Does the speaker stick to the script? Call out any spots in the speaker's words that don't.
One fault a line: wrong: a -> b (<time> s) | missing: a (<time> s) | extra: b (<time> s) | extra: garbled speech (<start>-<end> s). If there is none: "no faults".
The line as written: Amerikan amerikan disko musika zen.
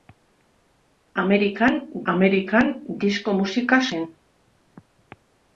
no faults